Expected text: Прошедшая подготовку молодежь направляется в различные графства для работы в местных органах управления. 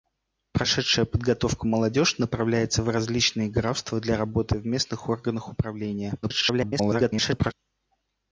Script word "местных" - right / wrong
right